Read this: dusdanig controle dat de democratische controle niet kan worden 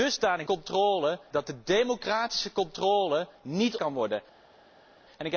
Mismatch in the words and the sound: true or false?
false